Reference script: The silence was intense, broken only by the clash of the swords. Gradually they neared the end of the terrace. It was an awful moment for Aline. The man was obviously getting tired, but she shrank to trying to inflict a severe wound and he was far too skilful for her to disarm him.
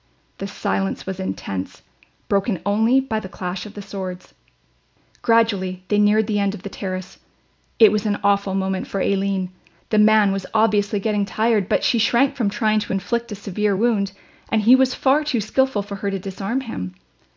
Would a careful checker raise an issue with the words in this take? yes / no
yes